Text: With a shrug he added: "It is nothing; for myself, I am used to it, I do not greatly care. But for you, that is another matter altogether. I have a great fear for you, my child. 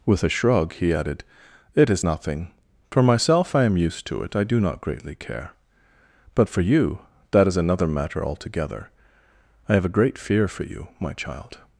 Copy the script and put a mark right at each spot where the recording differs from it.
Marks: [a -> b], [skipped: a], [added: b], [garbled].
With a shrug he added: "It is nothing; for myself, I am used to it, I do not greatly care. But for you, that is another matter altogether. I have a great fear for you, my child.